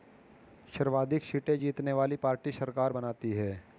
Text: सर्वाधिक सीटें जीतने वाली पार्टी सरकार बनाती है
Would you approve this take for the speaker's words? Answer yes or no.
yes